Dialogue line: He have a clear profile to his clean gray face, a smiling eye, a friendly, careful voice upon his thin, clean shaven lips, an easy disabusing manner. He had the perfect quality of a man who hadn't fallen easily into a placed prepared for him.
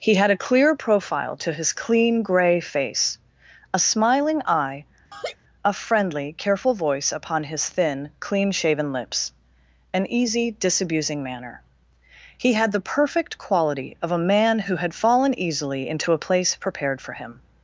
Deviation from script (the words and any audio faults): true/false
true